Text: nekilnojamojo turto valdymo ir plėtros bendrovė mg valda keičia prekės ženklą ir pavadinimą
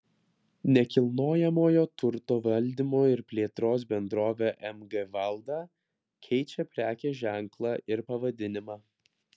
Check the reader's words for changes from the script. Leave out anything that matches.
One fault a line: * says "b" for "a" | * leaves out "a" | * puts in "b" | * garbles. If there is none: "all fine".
all fine